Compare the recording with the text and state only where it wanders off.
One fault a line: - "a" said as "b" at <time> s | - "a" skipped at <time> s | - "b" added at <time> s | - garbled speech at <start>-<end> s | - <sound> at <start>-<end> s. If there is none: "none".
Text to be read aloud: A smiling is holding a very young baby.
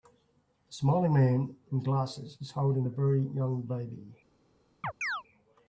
- "man in glasses" added at 1.1 s
- chirp at 4.8-5.2 s